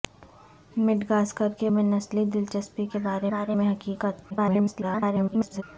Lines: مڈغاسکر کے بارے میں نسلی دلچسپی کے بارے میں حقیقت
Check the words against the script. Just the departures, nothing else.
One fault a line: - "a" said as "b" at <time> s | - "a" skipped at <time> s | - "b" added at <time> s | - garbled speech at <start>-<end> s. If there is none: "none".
- "بارے" skipped at 1.7 s
- "بارے" added at 3.3 s
- garbled speech at 4.3-5.6 s